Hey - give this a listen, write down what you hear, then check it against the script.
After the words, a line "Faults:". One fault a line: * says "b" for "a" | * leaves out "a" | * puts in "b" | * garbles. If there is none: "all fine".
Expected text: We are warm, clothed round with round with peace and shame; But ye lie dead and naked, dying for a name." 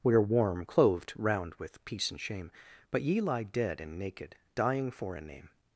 We are warm, clothed round with peace and shame; But ye lie dead and naked, dying for a name."
Faults:
* leaves out "round with"